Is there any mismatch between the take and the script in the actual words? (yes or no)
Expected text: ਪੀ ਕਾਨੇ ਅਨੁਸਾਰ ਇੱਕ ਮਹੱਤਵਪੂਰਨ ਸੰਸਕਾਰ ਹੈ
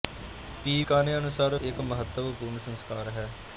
no